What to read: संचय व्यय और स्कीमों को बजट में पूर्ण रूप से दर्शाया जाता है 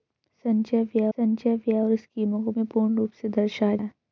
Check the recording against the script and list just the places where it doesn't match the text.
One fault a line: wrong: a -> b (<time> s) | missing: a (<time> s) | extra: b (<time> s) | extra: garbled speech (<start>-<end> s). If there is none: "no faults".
extra: संचय व्यय (1.2 s)
missing: बजट (2.5 s)
missing: जाता (3.8 s)